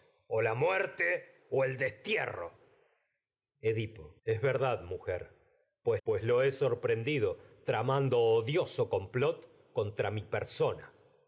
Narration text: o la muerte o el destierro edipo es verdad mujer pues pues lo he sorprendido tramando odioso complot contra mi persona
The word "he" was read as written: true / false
true